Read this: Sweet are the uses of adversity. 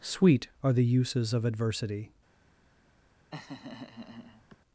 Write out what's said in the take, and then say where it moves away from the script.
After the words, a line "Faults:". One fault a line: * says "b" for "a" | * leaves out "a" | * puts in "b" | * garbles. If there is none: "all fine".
Sweet are the uses of adversity.
Faults:
all fine